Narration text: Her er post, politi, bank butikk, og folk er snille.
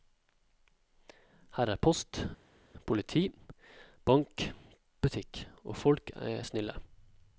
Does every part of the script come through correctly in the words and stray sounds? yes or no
yes